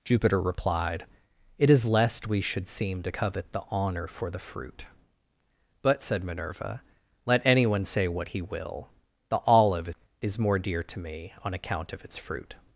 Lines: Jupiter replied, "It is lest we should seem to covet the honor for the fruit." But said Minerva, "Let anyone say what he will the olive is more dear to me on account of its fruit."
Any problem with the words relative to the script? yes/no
no